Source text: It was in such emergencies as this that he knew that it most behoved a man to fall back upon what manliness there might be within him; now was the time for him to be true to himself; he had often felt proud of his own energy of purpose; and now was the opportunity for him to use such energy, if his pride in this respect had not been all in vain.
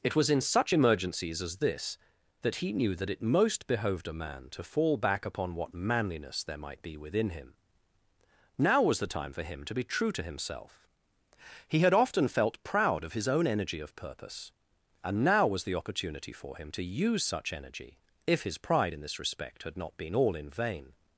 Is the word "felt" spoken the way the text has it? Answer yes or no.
yes